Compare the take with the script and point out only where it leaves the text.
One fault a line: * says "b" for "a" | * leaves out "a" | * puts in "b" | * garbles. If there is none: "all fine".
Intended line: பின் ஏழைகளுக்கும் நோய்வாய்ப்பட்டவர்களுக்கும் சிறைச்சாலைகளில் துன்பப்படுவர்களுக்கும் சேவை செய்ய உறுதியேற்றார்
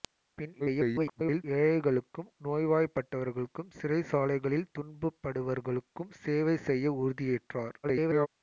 * garbles
* garbles